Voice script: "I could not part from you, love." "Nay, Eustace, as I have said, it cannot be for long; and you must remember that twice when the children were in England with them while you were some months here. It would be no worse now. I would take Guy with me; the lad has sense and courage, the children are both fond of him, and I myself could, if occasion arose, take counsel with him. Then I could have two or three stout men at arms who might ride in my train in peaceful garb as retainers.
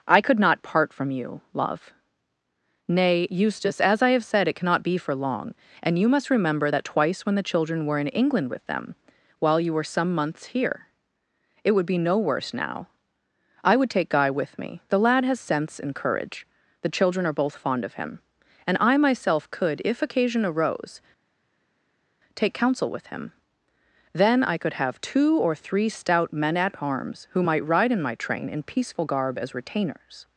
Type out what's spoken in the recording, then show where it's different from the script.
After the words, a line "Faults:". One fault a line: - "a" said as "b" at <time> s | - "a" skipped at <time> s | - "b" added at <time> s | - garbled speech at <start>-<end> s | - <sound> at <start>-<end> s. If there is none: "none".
"I could not part from you, love." "Nay, Eustace, as I have said, it cannot be for long; and you must remember that twice when the children were in England with them while you were some months here. It would be no worse now. I would take Guy with me; the lad has sense and courage, the children are both fond of him, and I myself could, if occasion arose, take counsel with him. Then I could have two or three stout men at arms who might ride in my train in peaceful garb as retainers.
Faults:
none